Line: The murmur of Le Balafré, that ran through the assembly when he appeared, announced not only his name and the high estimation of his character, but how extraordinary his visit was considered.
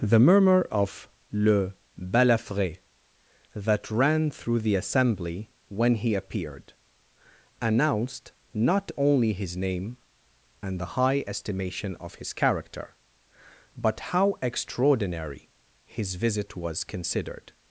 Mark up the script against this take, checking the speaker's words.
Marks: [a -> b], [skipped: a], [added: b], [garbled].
The murmur of Le Balafré, that ran through the assembly when he appeared, announced not only his name and the high estimation of his character, but how extraordinary his visit was considered.